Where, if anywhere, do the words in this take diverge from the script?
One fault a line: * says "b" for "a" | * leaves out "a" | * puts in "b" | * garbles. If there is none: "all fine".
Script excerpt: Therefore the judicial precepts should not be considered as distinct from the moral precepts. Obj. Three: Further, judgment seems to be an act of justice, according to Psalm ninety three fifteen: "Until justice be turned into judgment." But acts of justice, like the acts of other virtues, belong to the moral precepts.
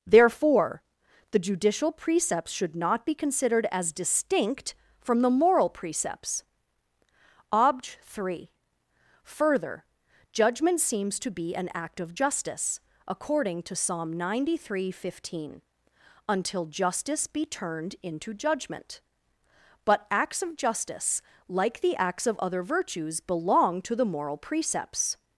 all fine